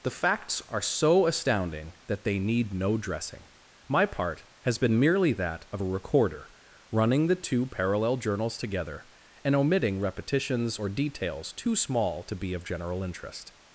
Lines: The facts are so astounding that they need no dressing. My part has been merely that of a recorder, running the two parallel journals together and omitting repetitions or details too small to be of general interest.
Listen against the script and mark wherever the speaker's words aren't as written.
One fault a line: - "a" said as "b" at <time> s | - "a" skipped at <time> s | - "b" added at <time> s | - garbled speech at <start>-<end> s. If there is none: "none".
none